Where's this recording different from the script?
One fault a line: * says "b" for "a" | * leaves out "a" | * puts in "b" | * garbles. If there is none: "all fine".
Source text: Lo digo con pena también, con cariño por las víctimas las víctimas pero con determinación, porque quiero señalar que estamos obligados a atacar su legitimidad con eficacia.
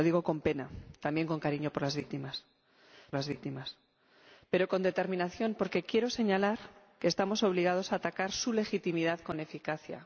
all fine